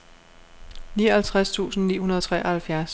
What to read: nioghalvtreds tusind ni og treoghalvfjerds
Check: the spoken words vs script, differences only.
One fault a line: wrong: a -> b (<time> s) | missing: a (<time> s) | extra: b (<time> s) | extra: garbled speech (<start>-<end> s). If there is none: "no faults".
extra: hundrede (2.0 s)